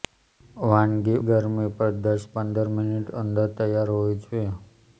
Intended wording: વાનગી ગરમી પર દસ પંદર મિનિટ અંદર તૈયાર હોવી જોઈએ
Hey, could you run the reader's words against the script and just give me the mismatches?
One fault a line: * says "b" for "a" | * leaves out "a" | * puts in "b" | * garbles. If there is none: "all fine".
all fine